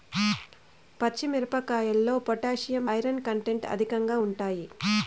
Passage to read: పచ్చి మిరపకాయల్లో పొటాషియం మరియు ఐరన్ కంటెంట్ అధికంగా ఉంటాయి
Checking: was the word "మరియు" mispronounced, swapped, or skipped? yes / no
yes